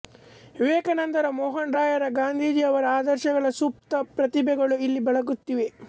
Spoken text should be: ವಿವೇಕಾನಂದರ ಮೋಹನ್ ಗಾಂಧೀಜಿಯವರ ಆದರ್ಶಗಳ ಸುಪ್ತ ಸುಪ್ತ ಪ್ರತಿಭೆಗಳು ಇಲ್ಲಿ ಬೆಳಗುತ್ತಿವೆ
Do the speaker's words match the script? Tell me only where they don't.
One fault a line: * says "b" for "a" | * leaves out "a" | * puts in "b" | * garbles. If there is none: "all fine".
* puts in "ರಾಯರ"
* leaves out "ಸುಪ್ತ"